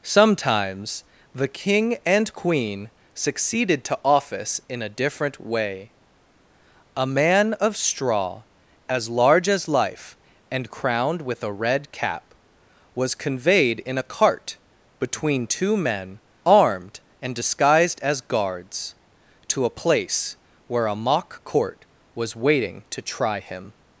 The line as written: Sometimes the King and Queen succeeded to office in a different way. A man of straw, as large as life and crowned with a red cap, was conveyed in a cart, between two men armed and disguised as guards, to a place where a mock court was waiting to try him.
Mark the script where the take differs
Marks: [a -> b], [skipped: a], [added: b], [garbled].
Sometimes the King and Queen succeeded to office in a different way. A man of straw, as large as life and crowned with a red cap, was conveyed in a cart, between two men armed and disguised as guards, to a place where a mock court was waiting to try him.